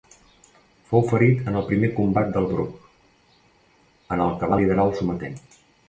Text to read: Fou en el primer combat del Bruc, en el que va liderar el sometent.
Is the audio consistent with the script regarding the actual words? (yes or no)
no